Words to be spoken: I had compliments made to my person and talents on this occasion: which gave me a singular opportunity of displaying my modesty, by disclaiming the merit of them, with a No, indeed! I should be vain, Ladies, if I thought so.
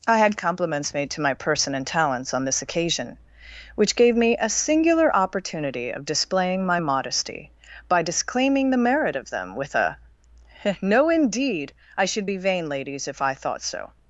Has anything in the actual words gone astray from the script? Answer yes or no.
no